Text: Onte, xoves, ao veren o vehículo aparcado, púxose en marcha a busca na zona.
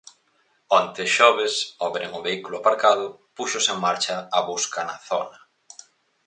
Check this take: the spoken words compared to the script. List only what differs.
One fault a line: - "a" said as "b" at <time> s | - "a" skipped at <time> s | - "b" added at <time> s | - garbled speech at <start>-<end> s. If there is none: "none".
none